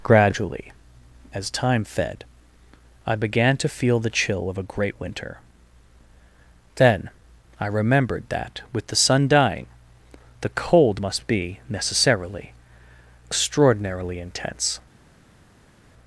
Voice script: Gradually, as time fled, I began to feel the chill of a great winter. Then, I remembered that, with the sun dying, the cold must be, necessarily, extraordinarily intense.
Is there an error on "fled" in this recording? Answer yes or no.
yes